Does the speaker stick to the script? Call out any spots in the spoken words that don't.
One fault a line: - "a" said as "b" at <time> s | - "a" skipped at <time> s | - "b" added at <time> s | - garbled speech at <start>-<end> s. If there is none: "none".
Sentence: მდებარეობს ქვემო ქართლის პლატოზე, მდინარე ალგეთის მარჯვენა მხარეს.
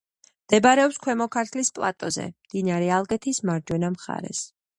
none